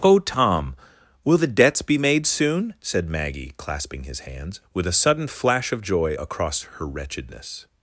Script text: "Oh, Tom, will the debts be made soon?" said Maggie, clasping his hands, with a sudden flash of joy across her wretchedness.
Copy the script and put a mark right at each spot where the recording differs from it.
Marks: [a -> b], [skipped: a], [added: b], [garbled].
"Oh, Tom, will the debts be made soon?" said Maggie, clasping his hands, with a sudden flash of joy across her wretchedness.